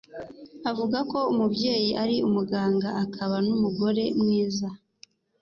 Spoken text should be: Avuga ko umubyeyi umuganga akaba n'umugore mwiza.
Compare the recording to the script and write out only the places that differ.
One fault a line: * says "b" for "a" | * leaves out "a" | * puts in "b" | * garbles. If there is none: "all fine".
* puts in "ari"